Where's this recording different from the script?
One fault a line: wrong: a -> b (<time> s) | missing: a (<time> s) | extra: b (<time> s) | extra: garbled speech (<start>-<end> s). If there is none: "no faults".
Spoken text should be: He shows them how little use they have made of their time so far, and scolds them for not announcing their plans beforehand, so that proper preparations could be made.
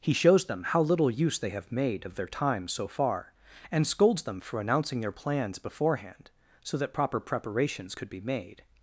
missing: not (4.6 s)